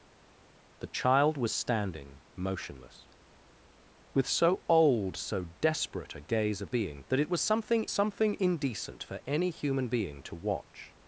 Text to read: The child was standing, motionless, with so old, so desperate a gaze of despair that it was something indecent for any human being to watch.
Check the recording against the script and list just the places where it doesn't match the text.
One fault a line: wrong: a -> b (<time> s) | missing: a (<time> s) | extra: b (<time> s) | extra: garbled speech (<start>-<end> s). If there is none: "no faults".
wrong: despair -> being (6.7 s)
extra: something (7.9 s)